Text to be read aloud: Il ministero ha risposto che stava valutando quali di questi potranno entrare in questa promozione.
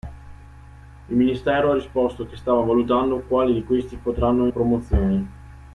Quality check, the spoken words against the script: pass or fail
fail